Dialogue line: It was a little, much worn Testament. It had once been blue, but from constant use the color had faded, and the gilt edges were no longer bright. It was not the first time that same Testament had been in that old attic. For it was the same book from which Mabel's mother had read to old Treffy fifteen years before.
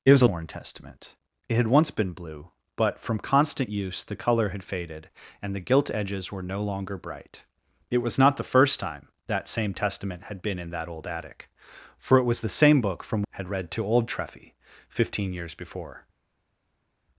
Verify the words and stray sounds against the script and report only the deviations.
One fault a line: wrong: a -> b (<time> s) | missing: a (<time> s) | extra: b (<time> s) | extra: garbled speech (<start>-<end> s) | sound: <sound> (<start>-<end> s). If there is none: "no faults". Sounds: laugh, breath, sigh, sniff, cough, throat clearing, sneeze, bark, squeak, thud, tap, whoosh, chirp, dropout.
missing: little much (0.3 s)
missing: which Mabel's mother (13.2 s)